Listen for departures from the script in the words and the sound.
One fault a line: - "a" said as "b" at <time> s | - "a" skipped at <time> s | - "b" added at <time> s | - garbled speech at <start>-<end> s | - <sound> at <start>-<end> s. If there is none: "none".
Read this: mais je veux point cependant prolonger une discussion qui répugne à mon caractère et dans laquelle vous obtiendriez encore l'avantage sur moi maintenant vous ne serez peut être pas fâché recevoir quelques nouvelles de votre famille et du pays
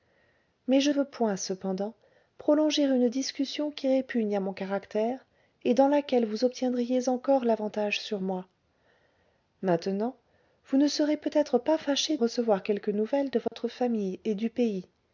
- dropout at 13.5-13.5 s